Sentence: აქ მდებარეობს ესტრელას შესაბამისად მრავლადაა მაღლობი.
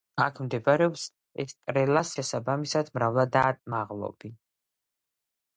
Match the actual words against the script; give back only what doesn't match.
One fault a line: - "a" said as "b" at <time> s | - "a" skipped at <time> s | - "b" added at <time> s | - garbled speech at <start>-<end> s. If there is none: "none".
none